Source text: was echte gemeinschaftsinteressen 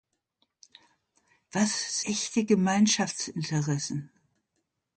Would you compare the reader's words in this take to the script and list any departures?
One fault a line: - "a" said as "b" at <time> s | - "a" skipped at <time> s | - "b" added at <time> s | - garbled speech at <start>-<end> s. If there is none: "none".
none